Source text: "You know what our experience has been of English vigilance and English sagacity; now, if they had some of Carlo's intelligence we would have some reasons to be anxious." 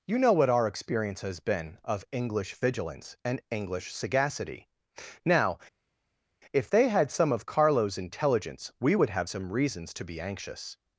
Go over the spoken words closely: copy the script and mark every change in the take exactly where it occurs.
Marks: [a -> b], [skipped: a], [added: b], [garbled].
"You know what our experience has been of English vigilance and English sagacity; now, if they had some of Carlo's intelligence we would have some reasons to be anxious."